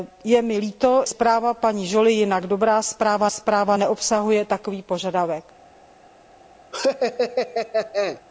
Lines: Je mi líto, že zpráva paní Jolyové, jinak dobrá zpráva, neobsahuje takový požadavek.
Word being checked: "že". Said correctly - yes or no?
no